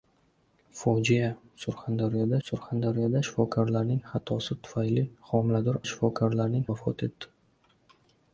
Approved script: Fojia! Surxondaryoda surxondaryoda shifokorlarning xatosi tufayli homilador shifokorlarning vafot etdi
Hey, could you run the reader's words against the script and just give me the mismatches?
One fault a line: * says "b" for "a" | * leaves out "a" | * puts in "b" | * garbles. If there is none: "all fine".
all fine